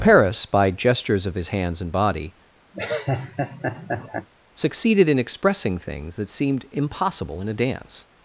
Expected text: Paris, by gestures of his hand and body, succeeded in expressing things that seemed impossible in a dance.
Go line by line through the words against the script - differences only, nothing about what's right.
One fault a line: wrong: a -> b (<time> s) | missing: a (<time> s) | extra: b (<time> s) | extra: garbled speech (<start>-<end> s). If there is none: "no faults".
wrong: hand -> hands (1.5 s)